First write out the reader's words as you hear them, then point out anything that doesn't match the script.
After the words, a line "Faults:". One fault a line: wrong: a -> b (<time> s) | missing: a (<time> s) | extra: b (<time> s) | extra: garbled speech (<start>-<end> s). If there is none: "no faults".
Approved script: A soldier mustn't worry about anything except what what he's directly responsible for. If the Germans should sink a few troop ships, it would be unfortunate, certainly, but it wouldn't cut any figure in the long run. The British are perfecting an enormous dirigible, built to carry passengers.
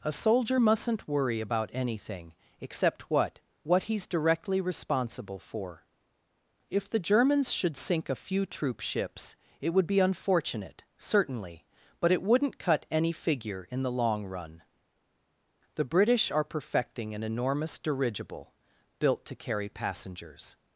A soldier mustn't worry about anything except what what he's directly responsible for. If the Germans should sink a few troop ships, it would be unfortunate, certainly, but it wouldn't cut any figure in the long run. The British are perfecting an enormous dirigible, built to carry passengers.
Faults:
no faults